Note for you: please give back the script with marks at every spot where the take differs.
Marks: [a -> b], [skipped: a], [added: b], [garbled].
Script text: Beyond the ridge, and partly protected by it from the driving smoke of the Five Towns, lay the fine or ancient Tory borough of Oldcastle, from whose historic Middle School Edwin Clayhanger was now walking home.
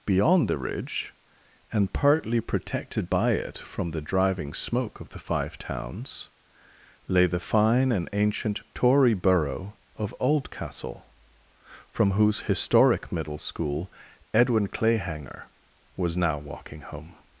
Beyond the ridge, and partly protected by it from the driving smoke of the Five Towns, lay the fine [or -> and] ancient Tory borough of Oldcastle, from whose historic Middle School Edwin Clayhanger was now walking home.